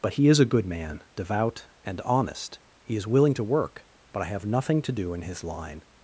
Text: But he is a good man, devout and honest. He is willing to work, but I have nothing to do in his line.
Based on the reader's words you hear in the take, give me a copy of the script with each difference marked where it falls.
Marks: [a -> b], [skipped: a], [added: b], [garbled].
But he is a good man, devout and honest. He is willing to work, but I have nothing to do in his line.